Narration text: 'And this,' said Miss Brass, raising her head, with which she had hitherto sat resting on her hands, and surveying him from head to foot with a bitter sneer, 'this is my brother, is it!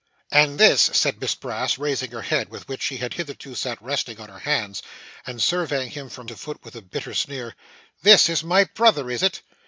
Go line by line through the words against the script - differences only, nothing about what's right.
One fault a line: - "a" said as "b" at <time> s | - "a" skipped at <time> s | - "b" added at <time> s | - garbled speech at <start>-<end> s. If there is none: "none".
- "head" skipped at 6.3 s